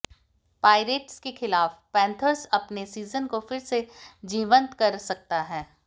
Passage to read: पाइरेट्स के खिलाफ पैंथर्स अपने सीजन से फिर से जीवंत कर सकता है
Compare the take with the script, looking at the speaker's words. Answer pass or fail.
fail